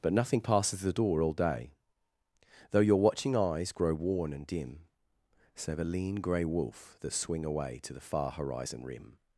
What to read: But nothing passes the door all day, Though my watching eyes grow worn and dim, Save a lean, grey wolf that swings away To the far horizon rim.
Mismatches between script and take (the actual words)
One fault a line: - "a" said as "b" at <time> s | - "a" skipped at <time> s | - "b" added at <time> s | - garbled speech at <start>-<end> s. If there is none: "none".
- "my" said as "your" at 2.8 s
- "swings" said as "swing" at 7.1 s